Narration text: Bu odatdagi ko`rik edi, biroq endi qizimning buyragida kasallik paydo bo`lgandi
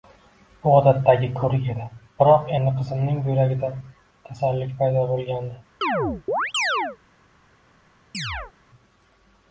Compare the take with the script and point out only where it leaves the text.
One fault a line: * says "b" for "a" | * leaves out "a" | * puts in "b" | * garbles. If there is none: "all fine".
all fine